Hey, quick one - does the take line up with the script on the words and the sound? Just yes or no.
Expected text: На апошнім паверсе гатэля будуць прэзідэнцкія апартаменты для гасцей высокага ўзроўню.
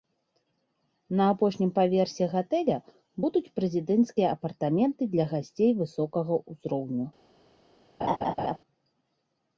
no